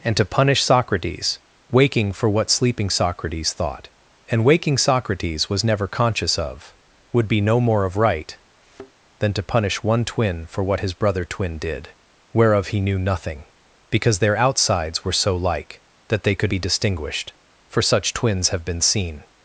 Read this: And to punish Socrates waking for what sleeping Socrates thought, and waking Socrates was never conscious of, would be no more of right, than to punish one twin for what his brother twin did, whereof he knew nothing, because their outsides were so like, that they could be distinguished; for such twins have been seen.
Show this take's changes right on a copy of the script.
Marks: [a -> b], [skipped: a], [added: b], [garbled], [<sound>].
And to punish Socrates waking for what sleeping Socrates thought, and waking Socrates was never conscious of, would be no more of right, [thud] than to punish one twin for what his brother twin did, whereof he knew nothing, because their outsides were so like, that they could be distinguished; for such twins have been seen.